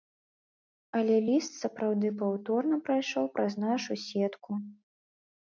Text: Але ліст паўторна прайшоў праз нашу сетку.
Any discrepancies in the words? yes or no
yes